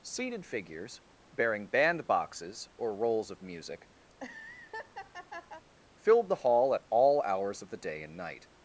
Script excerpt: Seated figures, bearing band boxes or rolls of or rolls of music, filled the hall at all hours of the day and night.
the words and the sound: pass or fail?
fail